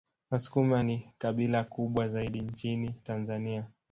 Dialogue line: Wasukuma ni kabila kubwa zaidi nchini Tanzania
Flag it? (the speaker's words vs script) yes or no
no